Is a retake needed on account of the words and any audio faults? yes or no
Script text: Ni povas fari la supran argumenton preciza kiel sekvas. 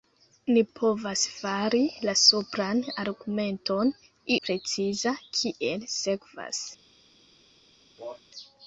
yes